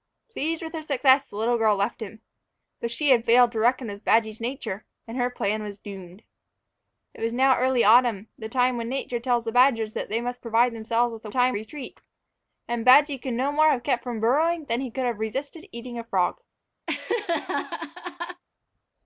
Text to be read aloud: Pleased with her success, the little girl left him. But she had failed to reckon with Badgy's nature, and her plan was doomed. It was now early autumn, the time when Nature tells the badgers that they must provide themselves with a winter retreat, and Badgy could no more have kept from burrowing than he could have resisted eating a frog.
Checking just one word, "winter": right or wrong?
wrong